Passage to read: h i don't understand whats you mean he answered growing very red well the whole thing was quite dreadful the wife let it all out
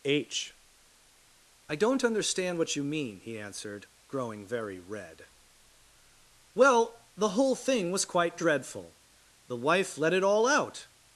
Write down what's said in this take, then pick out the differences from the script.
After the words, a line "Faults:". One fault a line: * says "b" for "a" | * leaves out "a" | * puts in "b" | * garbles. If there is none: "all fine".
h i don't understand what you mean he answered growing very red well the whole thing was quite dreadful the wife let it all out
Faults:
* says "what" for "whats"